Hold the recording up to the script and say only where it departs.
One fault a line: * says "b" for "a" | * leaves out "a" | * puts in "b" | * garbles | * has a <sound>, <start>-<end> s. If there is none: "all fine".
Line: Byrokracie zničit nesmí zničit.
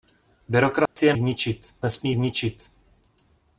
* has a dropout, 0.9-1.0 s